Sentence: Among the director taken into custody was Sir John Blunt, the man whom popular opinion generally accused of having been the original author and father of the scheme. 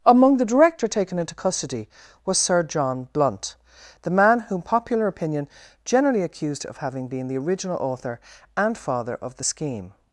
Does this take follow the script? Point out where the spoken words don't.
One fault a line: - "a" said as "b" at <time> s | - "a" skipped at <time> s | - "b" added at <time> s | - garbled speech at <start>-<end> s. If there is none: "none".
none